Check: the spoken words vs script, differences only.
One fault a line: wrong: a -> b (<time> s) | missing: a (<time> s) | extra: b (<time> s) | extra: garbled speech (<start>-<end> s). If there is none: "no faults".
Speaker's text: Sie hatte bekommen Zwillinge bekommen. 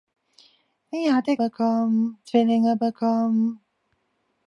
no faults